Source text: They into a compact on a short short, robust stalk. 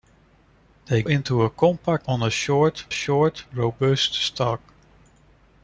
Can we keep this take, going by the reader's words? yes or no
yes